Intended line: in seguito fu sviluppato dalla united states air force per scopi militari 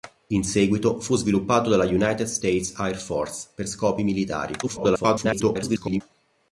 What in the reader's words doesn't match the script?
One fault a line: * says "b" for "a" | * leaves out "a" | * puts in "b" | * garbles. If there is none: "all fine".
* garbles